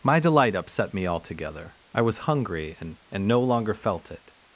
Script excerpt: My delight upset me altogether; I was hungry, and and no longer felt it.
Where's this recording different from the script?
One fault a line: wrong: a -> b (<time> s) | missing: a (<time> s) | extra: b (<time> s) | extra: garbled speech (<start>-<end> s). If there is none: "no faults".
no faults